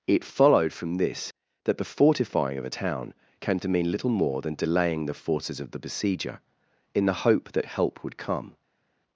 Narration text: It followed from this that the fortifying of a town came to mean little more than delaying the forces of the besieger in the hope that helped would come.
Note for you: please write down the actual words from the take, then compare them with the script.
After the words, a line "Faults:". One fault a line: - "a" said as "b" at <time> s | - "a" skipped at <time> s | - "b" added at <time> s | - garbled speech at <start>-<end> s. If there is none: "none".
It followed from this that the fortifying of a town came to mean little more than delaying the forces of the besieger in the hope that help would come.
Faults:
- "helped" said as "help" at 7.7 s